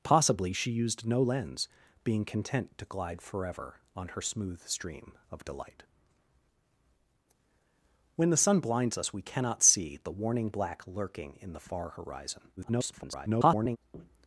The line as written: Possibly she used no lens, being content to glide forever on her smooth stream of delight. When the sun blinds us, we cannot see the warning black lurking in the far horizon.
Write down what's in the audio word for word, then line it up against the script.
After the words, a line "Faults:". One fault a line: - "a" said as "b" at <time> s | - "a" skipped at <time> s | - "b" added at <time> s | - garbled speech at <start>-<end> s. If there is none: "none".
Possibly she used no lens, being content to glide forever on her smooth stream of delight. When the sun blinds us, we cannot see the warning black lurking in the far horizon. [garbled]
Faults:
- garbled speech at 12.6-13.8 s